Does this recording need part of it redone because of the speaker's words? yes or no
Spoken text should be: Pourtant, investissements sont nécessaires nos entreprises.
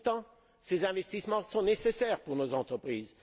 yes